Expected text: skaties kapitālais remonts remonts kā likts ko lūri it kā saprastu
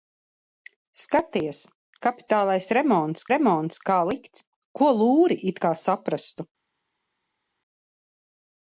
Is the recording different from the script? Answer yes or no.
no